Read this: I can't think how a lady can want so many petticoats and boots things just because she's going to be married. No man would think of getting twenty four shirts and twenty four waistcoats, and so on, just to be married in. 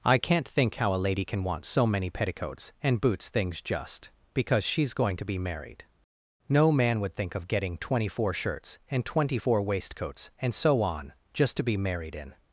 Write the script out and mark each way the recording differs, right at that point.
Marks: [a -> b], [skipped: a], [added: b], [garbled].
I can't think how a lady can want so many petticoats and boots things just because she's going to be married. No man would think of getting twenty four shirts and twenty four waistcoats, and so on, just to be married in.